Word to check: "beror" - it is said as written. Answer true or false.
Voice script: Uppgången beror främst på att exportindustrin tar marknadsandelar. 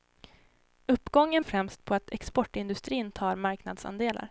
false